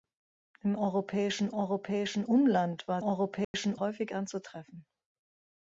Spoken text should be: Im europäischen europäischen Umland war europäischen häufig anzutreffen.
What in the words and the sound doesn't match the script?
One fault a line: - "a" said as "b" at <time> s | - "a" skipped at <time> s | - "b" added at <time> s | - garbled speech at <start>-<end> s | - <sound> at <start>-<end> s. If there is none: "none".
- dropout at 3.4-3.5 s